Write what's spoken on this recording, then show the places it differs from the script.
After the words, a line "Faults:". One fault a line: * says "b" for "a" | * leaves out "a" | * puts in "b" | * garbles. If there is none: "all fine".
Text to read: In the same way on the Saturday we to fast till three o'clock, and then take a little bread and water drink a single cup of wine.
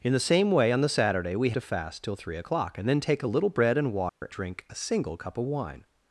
In the same way on the Saturday we to fast till three o'clock, and then take a little bread and water drink a single cup of wine.
Faults:
all fine